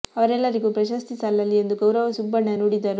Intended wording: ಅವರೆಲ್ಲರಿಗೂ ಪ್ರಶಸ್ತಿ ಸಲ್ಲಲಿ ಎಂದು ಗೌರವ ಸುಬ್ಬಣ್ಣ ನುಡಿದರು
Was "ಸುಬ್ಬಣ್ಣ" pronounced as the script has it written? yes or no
yes